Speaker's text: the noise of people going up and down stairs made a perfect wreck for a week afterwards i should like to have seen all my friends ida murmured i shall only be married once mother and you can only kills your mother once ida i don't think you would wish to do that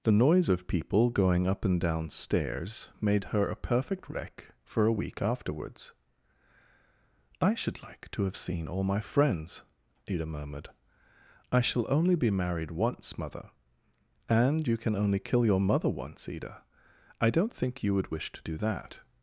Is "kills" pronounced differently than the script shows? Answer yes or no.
yes